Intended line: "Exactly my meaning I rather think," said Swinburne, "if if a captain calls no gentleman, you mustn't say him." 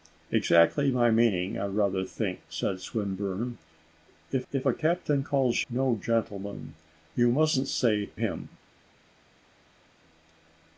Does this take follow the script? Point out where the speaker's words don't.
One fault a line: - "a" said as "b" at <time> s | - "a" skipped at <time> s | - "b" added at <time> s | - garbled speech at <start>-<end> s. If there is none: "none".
none